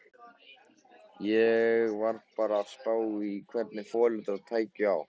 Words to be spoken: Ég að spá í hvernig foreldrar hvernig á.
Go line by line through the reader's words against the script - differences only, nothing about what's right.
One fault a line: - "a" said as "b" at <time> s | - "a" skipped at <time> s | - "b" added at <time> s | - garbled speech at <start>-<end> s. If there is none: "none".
- "var bara" added at 2.0 s
- "hvernig" said as "tækju" at 4.5 s